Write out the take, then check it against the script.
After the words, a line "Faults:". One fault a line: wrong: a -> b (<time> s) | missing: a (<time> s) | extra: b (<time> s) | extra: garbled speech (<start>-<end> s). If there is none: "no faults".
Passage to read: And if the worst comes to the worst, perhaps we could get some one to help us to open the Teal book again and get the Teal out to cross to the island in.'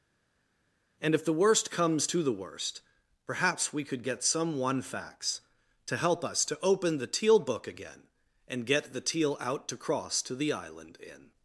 And if the worst comes to the worst, perhaps we could get some one facts to help us to open the Teal book again and get the Teal out to cross to the island in.'
Faults:
extra: facts (4.8 s)